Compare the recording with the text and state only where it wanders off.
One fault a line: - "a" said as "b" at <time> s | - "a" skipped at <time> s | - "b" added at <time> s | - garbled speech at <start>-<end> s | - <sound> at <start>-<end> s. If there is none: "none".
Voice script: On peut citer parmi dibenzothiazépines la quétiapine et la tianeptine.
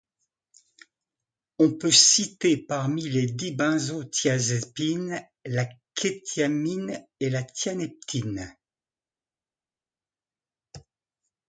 - "les" added at 3.0 s